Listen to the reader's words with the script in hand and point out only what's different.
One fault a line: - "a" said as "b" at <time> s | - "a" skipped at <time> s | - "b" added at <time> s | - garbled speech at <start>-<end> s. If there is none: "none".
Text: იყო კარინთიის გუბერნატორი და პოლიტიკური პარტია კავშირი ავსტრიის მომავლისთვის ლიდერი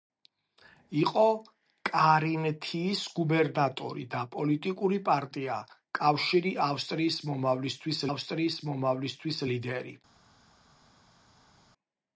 - "ავსტრიის მომავლისთვის" added at 8.1 s